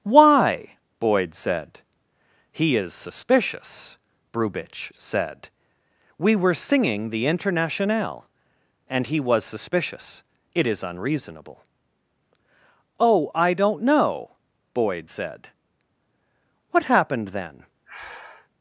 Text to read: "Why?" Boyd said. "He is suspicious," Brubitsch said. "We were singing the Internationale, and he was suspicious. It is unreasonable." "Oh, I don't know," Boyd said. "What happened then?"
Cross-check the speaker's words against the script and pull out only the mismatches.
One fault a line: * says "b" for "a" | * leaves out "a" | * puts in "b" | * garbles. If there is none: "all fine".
all fine